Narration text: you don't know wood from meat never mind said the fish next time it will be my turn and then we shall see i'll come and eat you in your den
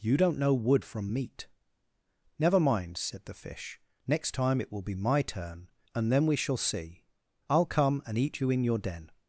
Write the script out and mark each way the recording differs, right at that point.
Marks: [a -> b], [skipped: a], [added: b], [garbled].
you don't know wood from meat never mind said the fish next time it will be my turn and then we shall see i'll come and eat you in your den